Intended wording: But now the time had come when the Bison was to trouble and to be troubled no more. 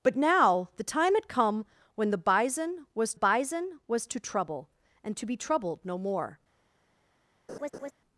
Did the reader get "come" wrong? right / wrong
right